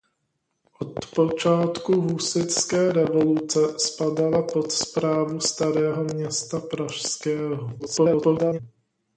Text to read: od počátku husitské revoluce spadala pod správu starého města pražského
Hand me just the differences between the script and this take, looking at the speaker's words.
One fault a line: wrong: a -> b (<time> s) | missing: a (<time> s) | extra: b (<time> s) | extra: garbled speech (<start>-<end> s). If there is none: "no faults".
extra: garbled speech (7.8-8.6 s)